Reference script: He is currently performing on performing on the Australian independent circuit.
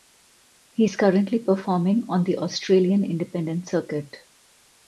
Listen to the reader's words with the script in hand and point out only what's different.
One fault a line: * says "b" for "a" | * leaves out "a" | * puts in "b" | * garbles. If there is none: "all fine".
* leaves out "performing on"